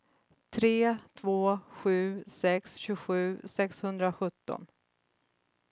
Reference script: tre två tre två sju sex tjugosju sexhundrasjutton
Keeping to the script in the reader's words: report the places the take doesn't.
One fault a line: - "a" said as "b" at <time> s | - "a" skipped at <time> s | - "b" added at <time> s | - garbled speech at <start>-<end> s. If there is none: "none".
- "tre två" skipped at 1.6 s